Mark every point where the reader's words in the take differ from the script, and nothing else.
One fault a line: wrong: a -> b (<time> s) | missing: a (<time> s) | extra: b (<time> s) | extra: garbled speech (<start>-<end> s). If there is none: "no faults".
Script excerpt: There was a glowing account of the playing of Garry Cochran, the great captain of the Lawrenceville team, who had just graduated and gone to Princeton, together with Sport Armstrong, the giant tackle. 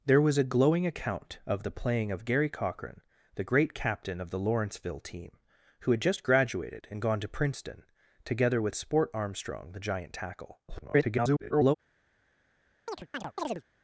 extra: garbled speech (10.7-11.7 s)